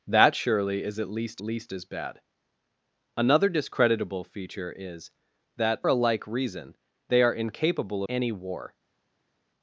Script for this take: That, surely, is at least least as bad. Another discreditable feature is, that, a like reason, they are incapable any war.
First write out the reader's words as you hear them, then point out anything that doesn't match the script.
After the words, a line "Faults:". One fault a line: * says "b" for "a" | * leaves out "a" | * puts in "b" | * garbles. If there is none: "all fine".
That, surely, is at least least as bad. Another discreditable feature is, that, a like reason, they are incapable any war.
Faults:
all fine